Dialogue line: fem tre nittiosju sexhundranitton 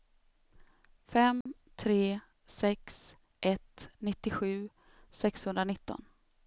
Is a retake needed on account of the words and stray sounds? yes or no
yes